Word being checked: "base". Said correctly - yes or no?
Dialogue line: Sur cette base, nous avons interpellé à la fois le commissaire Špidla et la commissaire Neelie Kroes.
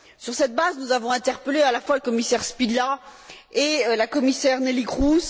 yes